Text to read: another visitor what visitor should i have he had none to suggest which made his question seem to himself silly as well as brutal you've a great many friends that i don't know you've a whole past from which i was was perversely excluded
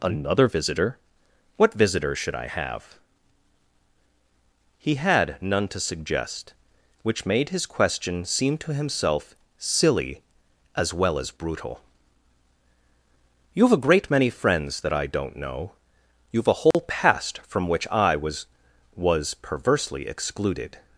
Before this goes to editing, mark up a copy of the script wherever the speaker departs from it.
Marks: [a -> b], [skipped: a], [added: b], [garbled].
another visitor what visitor should i have he had none to suggest which made his question seem to himself silly as well as brutal you've a great many friends that i don't know you've a whole past from which i was was perversely excluded